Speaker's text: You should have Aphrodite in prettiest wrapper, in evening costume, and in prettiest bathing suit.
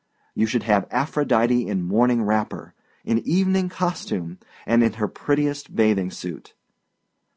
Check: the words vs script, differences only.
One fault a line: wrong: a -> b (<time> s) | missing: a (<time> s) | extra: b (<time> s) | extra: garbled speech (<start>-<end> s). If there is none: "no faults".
wrong: prettiest -> morning (1.8 s)
extra: her (4.9 s)